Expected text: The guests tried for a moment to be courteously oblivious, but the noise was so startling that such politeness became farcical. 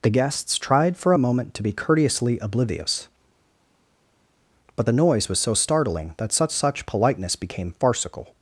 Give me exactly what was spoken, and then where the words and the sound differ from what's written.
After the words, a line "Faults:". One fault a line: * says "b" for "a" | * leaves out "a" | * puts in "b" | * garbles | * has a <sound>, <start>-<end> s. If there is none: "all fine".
The guests tried for a moment to be courteously oblivious, but the noise was so startling that such such politeness became farcical.
Faults:
* puts in "such"